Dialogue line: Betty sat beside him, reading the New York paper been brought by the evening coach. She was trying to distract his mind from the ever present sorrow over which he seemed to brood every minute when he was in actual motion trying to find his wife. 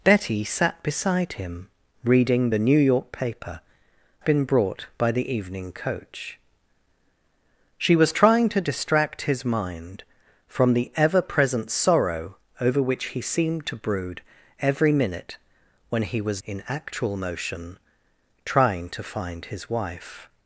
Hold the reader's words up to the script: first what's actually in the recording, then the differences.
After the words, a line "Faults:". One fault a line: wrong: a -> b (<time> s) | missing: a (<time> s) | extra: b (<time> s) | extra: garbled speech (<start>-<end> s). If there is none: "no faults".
Betty sat beside him, reading the New York paper been brought by the evening coach. She was trying to distract his mind from the ever present sorrow over which he seemed to brood every minute when he was in actual motion trying to find his wife.
Faults:
no faults